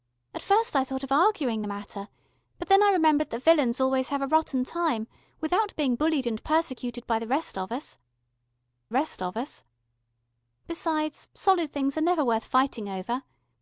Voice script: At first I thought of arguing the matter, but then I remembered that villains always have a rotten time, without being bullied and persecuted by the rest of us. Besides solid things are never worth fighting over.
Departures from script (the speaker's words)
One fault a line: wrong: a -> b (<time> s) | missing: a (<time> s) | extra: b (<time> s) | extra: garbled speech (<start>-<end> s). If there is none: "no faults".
extra: rest of us (8.9 s)